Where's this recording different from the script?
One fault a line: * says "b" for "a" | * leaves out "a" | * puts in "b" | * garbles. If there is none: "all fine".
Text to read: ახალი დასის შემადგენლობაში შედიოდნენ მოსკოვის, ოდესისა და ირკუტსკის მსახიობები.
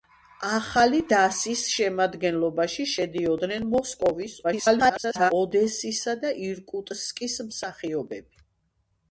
* garbles